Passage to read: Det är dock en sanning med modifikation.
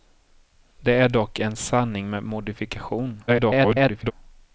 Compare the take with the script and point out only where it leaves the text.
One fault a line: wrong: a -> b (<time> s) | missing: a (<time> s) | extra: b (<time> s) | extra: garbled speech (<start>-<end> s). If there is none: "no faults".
extra: garbled speech (3.3-4.1 s)